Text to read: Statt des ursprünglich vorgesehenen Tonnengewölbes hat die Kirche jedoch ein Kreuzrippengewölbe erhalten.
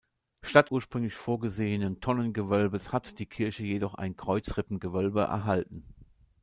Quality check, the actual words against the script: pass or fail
fail